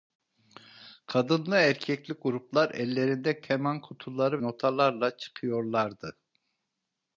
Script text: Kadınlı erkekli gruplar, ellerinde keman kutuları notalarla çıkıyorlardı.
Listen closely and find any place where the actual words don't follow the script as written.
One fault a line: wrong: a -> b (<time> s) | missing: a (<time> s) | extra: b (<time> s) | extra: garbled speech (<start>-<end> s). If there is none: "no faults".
no faults